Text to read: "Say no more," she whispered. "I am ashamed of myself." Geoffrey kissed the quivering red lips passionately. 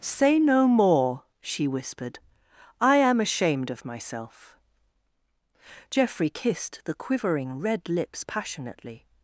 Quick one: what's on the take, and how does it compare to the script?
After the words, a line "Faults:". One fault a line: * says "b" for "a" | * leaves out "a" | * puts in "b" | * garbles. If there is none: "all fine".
"Say no more," she whispered. "I am ashamed of myself." Geoffrey kissed the quivering red lips passionately.
Faults:
all fine